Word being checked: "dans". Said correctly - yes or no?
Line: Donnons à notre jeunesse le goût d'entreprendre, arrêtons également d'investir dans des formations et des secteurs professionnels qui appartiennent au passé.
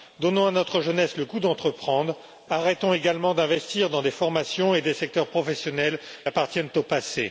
yes